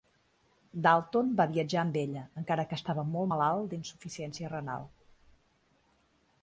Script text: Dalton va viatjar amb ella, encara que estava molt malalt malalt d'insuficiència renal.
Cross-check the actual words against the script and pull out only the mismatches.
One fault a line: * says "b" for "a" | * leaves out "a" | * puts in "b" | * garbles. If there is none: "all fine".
* leaves out "malalt"